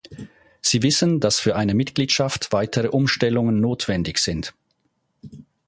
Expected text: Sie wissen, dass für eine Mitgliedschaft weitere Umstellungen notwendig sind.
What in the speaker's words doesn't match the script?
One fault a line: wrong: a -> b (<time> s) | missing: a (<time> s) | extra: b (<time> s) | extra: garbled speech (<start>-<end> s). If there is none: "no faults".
no faults